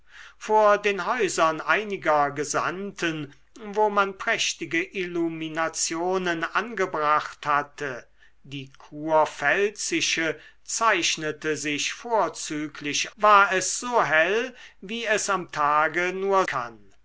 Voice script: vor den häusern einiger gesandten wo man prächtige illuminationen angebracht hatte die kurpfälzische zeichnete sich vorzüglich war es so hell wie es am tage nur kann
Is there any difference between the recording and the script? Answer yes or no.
no